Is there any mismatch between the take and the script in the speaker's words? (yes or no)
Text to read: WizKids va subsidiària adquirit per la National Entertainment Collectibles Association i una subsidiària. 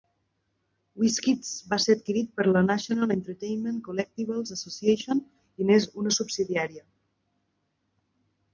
yes